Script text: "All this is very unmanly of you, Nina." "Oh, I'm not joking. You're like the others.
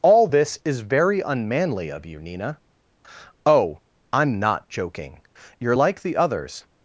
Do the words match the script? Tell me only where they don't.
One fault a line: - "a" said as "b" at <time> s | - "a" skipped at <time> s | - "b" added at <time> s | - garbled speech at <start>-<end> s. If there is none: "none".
none